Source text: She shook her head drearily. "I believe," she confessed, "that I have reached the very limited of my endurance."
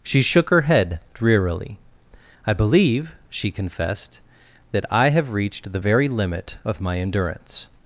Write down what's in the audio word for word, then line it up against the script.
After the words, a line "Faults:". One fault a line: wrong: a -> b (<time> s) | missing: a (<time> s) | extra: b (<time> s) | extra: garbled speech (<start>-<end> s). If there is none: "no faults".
She shook her head drearily. "I believe," she confessed, "that I have reached the very limit of my endurance."
Faults:
wrong: limited -> limit (6.1 s)